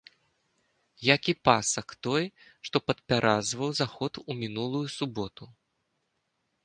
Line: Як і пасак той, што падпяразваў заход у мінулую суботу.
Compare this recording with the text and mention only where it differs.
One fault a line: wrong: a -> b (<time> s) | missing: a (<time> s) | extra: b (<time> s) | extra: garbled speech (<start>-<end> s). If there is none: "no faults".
no faults